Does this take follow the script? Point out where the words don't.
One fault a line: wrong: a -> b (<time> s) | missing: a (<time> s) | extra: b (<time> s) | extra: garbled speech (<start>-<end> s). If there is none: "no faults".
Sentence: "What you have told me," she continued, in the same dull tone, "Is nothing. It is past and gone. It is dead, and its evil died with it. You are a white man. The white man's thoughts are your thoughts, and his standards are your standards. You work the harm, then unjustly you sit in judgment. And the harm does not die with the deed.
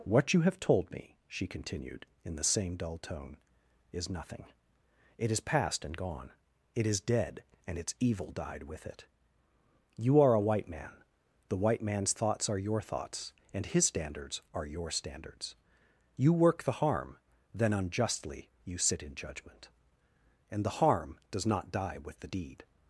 no faults